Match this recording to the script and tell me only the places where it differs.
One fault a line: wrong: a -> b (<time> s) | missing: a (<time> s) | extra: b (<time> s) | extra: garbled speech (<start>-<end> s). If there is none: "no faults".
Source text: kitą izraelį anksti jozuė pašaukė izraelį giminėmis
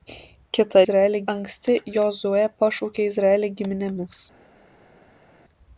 no faults